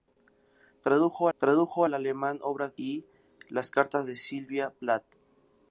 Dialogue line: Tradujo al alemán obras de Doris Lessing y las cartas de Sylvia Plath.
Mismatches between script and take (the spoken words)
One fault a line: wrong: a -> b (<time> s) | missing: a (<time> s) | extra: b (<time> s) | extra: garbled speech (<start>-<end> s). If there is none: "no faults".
extra: tradujo (1.4 s)
missing: de Doris Lessing (2.7 s)